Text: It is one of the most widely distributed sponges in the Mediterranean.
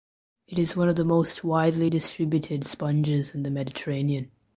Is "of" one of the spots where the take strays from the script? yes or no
no